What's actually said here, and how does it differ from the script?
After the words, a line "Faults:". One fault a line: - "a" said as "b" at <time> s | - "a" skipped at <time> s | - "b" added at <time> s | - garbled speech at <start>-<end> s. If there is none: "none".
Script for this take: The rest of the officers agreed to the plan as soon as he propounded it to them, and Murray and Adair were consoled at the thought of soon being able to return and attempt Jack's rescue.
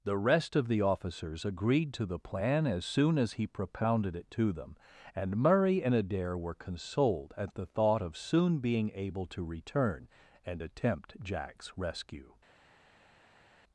The rest of the officers agreed to the plan as soon as he propounded it to them, and Murray and Adair were consoled at the thought of soon being able to return and attempt Jack's rescue.
Faults:
none